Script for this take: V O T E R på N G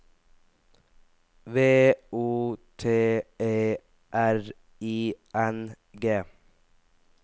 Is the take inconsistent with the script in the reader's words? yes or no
yes